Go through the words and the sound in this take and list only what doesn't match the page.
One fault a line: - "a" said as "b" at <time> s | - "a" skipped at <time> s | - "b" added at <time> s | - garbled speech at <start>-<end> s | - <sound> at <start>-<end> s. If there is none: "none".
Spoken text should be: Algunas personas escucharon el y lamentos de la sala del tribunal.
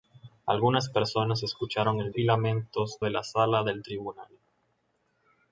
none